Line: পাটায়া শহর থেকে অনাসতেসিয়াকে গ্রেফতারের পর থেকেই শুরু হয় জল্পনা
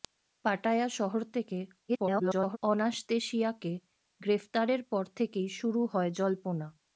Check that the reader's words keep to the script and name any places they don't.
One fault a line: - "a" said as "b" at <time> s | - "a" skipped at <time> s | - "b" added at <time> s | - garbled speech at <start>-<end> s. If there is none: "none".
- garbled speech at 1.9-2.6 s